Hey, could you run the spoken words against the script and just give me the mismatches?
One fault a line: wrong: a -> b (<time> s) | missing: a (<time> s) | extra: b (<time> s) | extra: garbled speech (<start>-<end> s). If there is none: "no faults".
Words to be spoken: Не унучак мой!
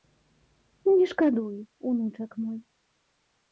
extra: шкадуй (1.1 s)